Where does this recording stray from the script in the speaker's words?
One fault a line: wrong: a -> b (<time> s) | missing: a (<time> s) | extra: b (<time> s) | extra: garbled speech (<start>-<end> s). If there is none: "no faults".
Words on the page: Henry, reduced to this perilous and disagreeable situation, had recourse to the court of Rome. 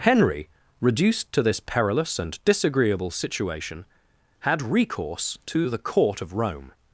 no faults